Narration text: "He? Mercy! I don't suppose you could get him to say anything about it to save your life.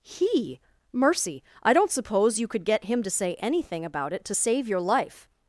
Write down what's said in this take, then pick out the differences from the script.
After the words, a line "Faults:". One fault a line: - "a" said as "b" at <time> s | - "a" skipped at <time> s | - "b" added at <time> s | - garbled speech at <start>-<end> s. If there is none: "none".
"He? Mercy! I don't suppose you could get him to say anything about it to save your life.
Faults:
none